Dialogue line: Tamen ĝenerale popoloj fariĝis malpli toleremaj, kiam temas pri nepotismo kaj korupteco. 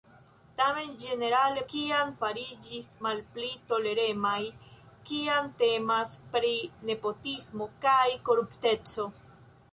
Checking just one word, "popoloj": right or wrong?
wrong